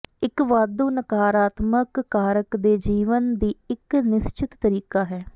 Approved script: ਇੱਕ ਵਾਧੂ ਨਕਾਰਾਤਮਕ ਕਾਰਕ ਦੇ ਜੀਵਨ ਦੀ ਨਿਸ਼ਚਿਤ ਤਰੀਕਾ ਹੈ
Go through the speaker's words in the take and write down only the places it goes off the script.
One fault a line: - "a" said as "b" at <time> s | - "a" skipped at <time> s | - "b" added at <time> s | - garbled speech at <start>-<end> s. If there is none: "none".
- "ਇੱਕ" added at 3.7 s